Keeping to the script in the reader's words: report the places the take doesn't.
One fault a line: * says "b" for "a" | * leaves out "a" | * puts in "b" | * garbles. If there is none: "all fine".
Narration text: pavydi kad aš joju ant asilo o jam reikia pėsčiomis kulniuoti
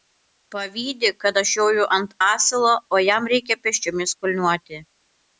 all fine